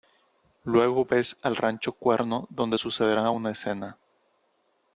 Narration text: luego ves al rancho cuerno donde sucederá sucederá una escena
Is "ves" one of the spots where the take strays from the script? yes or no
no